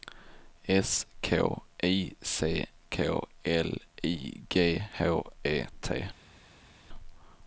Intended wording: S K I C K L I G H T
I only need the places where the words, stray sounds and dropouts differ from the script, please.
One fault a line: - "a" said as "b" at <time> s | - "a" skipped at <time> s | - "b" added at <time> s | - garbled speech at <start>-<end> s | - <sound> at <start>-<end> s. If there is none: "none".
- "E" added at 5.4 s